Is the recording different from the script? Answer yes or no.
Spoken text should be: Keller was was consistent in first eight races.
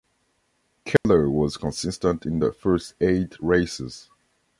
yes